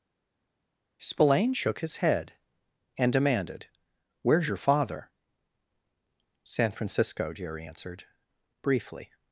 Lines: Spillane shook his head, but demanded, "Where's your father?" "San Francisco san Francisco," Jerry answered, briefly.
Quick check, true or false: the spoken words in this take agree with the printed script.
false